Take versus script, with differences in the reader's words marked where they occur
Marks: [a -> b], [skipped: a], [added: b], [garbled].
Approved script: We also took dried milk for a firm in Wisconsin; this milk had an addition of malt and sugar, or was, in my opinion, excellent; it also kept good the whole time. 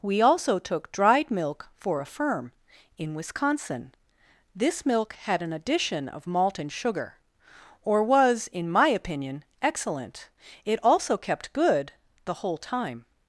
We also took dried milk for a firm in Wisconsin; this milk had an addition of malt and sugar, or was, in my opinion, excellent; it also kept good the whole time.